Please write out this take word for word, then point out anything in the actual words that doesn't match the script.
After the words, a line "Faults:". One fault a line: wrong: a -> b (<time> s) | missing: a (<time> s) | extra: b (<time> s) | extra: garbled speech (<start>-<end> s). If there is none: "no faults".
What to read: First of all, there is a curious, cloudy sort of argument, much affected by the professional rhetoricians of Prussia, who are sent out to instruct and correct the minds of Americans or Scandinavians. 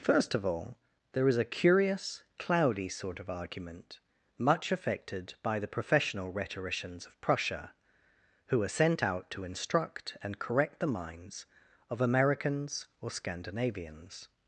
First of all, there is a curious, cloudy sort of argument, much affected by the professional rhetoricians of Prussia, who are sent out to instruct and correct the minds of Americans or Scandinavians.
Faults:
no faults